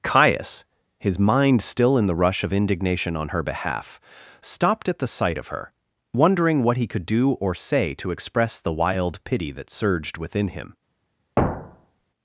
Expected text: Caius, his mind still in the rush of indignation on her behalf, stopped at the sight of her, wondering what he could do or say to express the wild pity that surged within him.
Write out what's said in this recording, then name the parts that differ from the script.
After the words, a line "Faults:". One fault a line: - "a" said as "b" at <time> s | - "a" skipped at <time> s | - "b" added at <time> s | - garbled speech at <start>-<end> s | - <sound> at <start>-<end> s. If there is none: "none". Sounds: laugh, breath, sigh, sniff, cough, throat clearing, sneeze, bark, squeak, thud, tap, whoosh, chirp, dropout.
Caius, his mind still in the rush of indignation on her behalf, stopped at the sight of her, wondering what he could do or say to express the wild pity that surged within him.
Faults:
- thud at 11.4-12.0 s